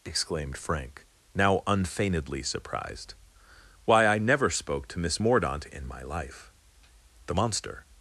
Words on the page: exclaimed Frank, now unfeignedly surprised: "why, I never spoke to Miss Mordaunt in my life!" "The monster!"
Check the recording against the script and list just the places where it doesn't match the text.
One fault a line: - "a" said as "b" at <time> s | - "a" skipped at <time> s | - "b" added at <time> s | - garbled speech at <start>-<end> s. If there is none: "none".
none